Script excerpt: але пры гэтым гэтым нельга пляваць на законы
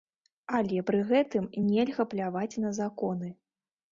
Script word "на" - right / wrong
right